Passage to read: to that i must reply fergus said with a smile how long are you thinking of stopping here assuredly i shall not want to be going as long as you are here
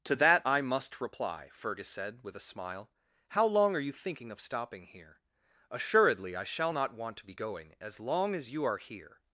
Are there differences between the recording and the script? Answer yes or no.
no